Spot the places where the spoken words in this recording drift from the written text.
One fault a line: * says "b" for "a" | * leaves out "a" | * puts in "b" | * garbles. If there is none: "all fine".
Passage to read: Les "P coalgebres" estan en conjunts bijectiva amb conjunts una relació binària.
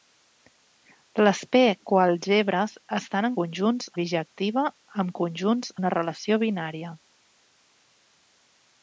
all fine